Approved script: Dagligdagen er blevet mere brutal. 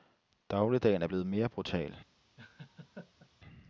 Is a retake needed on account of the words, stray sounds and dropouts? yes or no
yes